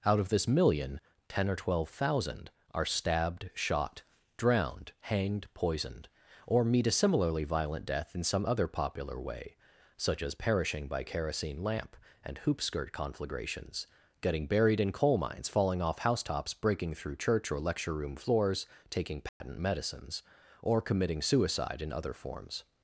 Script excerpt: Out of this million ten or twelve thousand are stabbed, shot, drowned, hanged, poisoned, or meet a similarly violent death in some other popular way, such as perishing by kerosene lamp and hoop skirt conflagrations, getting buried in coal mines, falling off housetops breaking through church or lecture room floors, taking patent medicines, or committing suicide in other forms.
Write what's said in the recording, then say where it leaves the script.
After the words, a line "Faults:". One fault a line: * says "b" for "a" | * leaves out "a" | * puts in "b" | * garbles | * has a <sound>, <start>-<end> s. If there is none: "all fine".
Out of this million ten or twelve thousand are stabbed, shot, drowned, hanged, poisoned, or meet a similarly violent death in some other popular way, such as perishing by kerosene lamp and hoop skirt conflagrations, getting buried in coal mines, falling off housetops breaking through church or lecture room floors, taking patent medicines, or committing suicide in other forms.
Faults:
* has a dropout, 19.3-19.4 s